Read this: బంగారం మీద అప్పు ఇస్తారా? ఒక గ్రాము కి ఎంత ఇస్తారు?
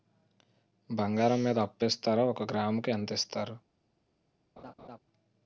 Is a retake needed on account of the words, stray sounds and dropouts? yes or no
yes